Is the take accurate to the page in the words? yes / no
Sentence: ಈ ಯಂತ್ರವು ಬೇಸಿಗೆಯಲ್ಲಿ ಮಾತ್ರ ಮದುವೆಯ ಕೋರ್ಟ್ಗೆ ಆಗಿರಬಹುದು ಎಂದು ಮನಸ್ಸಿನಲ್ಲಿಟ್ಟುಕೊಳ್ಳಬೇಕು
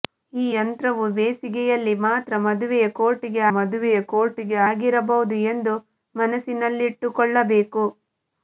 no